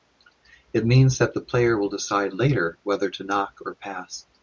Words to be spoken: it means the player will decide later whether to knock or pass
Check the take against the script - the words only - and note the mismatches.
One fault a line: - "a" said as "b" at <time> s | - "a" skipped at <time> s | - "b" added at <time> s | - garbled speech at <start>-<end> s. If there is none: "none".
- "that" added at 1.2 s